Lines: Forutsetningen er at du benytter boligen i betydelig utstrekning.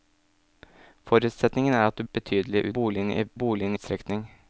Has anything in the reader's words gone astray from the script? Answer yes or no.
yes